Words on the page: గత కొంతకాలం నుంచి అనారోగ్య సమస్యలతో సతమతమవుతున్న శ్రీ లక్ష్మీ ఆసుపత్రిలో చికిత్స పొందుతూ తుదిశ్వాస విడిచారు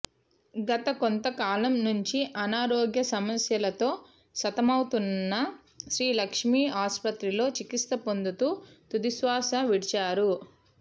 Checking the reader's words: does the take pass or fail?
pass